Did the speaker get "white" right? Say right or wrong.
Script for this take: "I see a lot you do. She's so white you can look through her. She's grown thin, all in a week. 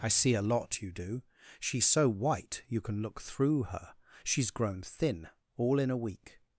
right